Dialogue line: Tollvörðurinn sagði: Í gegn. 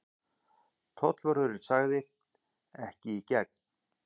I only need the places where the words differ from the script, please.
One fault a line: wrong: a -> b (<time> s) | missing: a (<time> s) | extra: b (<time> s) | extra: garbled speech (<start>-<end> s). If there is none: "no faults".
extra: Ekki (2.9 s)